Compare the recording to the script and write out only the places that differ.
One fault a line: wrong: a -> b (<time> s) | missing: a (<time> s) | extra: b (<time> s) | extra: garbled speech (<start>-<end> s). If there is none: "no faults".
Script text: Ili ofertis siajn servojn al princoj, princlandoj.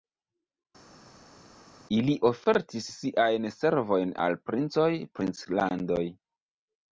no faults